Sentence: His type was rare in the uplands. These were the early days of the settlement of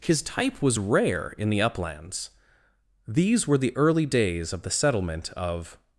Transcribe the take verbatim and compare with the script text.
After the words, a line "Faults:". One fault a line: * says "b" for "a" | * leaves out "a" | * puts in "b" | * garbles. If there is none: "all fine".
His type was rare in the uplands. These were the early days of the settlement of
Faults:
all fine